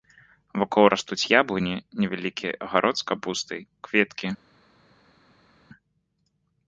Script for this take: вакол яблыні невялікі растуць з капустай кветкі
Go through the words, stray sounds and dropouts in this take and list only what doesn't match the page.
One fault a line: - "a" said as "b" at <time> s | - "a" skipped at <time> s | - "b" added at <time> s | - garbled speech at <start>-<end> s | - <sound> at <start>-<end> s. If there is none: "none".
- "растуць" added at 0.9 s
- "растуць" said as "агарод" at 2.7 s